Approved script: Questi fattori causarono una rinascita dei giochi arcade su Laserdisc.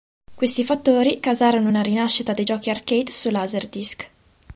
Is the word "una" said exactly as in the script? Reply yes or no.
yes